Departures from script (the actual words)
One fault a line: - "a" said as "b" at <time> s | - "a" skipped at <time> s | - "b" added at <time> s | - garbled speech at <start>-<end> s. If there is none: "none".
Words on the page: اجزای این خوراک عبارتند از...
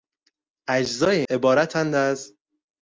- "این خوراک" skipped at 1.2 s